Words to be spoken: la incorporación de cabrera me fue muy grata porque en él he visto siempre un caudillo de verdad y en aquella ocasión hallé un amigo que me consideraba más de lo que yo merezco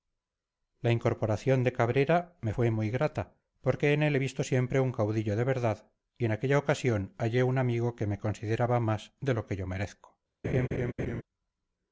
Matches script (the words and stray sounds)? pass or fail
fail